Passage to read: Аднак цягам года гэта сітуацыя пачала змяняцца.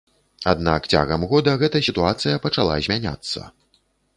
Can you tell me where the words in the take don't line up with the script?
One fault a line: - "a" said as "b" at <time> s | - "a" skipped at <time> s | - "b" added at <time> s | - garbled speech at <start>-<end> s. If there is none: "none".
none